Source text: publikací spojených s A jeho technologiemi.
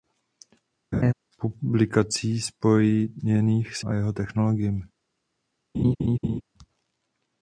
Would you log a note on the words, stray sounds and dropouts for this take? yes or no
yes